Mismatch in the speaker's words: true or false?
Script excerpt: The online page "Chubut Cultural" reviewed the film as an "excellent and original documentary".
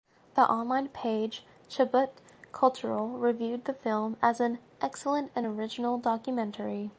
false